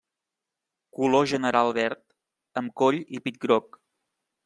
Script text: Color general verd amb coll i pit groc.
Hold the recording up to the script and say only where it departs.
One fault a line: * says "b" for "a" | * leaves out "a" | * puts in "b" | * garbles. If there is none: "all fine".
all fine